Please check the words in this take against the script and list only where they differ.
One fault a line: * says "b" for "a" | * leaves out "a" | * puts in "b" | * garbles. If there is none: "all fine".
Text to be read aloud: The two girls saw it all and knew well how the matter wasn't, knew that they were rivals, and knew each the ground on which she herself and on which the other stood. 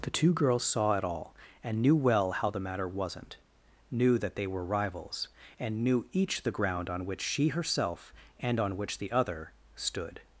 all fine